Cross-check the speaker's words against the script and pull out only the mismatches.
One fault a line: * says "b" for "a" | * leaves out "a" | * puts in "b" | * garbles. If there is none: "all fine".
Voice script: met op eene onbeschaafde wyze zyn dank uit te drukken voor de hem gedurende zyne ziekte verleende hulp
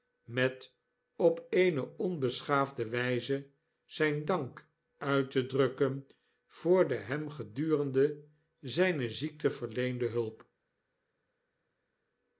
all fine